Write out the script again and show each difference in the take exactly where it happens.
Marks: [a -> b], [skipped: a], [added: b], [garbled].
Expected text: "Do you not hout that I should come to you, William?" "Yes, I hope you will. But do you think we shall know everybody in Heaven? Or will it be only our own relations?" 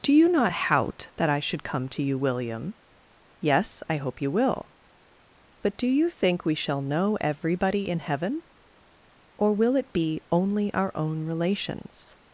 "Do you not hout that I should come to you, William?" "Yes, I hope you will. But do you think we shall know everybody in Heaven? Or will it be only our own relations?"